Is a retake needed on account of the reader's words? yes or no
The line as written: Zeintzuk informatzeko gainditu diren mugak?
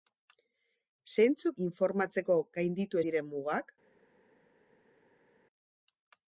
no